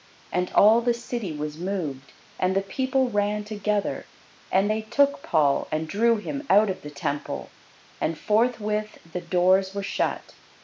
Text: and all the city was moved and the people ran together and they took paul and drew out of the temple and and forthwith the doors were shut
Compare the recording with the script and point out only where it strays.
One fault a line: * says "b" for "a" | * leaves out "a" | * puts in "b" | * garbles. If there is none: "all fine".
* puts in "him"
* leaves out "and"